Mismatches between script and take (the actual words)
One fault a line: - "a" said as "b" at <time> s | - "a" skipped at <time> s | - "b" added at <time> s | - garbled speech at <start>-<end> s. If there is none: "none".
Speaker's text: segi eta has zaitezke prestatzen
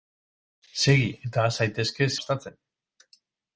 none